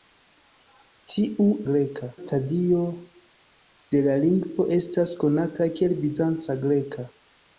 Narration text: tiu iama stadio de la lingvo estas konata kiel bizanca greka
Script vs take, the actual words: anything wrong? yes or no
yes